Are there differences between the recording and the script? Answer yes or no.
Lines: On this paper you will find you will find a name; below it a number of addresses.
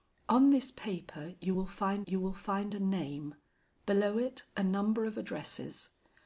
no